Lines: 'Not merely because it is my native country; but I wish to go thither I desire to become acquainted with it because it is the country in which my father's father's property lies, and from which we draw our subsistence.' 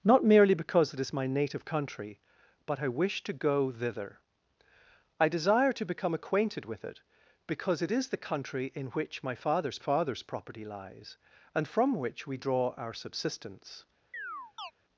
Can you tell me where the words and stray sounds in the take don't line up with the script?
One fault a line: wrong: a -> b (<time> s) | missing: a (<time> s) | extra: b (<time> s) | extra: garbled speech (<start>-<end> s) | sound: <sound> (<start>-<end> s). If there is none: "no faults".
sound: chirp (14.1-14.7 s)